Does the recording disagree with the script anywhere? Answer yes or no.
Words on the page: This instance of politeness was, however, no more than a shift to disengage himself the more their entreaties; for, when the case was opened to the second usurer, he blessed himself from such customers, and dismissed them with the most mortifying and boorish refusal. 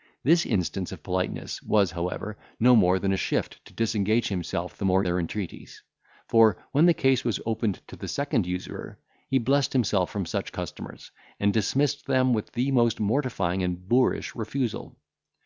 no